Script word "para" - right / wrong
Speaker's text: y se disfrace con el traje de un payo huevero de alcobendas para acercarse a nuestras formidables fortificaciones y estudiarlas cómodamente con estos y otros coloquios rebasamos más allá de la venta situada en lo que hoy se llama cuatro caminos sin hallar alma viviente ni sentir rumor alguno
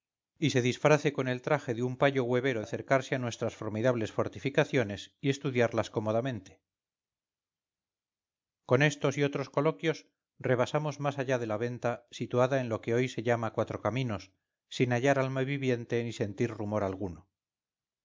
wrong